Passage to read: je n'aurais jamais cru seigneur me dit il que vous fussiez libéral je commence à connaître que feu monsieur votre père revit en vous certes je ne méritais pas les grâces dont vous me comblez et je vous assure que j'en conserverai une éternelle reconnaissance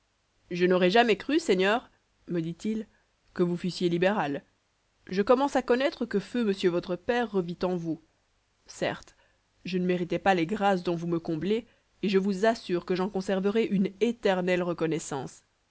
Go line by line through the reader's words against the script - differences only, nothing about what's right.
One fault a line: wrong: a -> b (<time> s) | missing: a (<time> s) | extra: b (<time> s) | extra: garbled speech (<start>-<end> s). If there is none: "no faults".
no faults